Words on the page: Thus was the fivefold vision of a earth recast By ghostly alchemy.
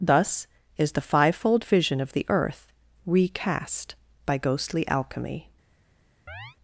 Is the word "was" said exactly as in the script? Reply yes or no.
no